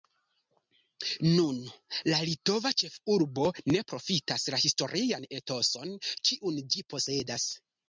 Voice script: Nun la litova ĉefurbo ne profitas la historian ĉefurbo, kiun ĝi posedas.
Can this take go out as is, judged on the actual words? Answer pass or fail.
fail